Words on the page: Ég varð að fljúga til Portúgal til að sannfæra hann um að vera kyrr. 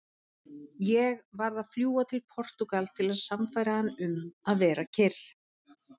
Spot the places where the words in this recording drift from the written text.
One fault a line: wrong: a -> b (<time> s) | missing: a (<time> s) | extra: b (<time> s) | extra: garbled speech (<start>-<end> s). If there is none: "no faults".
no faults